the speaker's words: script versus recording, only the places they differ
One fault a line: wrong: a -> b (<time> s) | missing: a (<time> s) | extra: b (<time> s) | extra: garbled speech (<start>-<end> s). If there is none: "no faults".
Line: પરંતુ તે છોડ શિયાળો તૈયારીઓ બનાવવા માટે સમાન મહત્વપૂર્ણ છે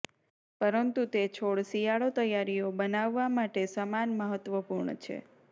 no faults